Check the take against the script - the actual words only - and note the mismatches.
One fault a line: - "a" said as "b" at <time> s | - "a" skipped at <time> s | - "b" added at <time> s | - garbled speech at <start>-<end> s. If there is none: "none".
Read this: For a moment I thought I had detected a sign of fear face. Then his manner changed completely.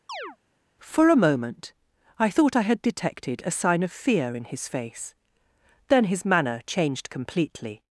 - "in his" added at 4.3 s